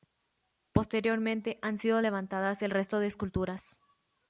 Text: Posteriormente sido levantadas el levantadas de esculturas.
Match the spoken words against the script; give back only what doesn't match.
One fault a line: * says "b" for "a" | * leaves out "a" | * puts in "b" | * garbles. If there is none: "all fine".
* puts in "han"
* says "resto" for "levantadas"